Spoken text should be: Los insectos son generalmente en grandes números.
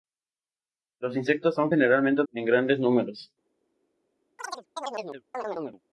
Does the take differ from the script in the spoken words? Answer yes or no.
no